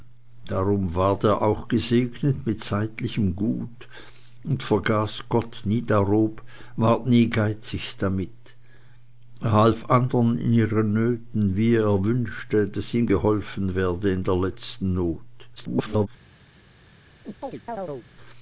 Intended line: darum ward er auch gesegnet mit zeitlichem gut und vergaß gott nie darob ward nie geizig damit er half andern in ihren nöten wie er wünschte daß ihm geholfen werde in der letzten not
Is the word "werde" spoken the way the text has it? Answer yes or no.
yes